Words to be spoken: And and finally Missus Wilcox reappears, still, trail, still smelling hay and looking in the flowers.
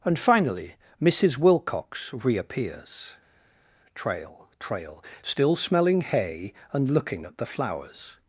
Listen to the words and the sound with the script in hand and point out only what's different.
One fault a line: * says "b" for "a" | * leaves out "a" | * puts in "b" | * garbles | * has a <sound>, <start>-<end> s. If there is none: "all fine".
* leaves out "and"
* says "trail" for "still"
* says "at" for "in"